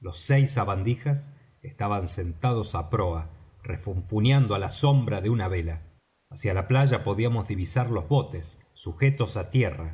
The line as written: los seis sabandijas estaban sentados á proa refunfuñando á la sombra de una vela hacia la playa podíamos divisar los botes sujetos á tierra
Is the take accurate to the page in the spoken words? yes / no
yes